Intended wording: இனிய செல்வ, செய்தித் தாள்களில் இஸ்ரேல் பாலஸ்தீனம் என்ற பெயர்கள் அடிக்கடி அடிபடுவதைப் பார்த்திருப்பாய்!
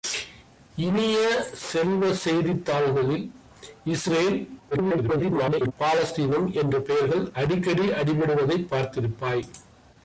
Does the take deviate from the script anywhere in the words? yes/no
yes